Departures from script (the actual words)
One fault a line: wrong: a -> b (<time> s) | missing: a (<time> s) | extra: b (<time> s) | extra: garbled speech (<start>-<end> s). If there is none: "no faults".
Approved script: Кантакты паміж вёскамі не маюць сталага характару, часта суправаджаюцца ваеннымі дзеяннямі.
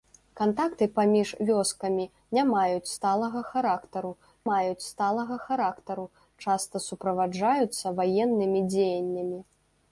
extra: маюць сталага характару (4.5 s)